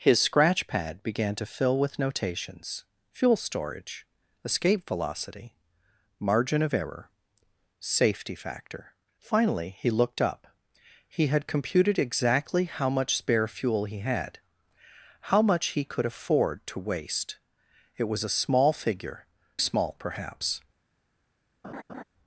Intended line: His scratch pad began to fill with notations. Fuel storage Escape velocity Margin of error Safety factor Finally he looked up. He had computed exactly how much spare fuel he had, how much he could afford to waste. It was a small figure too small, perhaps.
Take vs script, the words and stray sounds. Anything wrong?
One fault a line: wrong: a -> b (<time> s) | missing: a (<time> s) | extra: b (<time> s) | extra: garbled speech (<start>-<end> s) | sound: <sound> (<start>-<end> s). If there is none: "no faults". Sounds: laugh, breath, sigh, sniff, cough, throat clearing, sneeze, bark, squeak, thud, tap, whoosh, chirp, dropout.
missing: too (19.2 s)
sound: laugh (21.6-22.0 s)